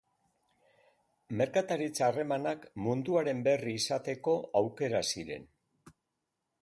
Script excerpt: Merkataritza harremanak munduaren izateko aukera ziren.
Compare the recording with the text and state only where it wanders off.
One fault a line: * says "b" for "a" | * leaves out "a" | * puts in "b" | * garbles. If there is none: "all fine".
* puts in "berri"